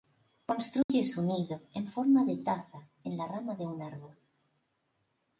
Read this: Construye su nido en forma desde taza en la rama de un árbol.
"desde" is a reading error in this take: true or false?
true